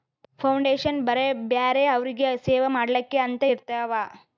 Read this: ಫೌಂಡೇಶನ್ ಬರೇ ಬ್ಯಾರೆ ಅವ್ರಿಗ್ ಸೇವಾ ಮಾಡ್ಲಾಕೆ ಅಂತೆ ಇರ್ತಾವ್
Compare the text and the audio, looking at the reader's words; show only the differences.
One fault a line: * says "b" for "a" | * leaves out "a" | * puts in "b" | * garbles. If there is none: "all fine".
all fine